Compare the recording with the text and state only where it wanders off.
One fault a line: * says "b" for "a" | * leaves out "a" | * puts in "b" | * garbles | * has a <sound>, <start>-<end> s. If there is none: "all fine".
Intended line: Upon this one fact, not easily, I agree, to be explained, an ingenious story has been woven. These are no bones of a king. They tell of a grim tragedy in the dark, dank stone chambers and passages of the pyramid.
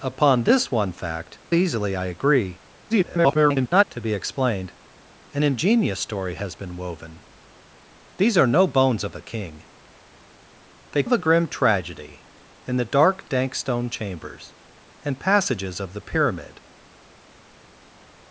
* leaves out "not"
* garbles
* leaves out "tell"